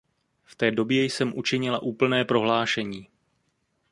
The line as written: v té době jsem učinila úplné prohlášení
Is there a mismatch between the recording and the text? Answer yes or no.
no